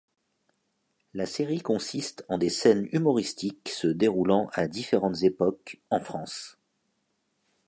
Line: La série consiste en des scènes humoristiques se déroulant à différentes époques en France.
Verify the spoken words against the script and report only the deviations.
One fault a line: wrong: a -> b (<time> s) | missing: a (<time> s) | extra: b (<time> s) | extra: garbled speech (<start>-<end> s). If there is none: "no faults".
no faults